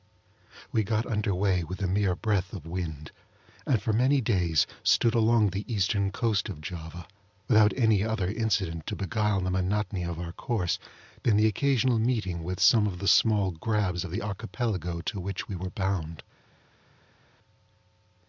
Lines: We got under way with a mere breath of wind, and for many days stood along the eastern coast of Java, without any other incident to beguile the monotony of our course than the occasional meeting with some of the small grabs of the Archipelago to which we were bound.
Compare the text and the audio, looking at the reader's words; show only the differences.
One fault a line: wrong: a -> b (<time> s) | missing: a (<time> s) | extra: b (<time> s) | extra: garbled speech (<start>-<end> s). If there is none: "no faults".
no faults